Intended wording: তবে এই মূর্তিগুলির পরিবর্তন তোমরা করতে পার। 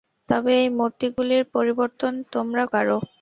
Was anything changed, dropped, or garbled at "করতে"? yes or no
yes